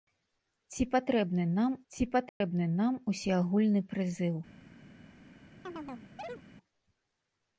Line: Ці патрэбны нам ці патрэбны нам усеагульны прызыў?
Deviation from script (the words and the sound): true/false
true